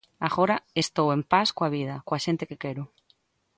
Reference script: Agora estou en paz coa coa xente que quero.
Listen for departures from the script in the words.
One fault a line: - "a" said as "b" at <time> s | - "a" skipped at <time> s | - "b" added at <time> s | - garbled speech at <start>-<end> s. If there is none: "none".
- "vida" added at 1.8 s